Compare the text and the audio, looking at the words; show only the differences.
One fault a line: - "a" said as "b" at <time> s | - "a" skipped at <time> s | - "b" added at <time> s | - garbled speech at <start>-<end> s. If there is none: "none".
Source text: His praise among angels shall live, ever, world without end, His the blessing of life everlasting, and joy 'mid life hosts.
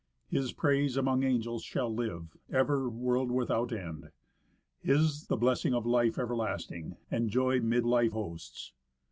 none